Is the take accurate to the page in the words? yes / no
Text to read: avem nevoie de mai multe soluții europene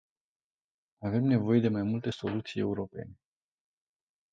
yes